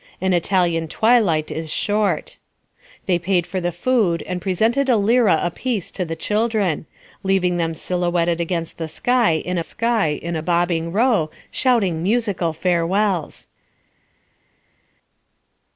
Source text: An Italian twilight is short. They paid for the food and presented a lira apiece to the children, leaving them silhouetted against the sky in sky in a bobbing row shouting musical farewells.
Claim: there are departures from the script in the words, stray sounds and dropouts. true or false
false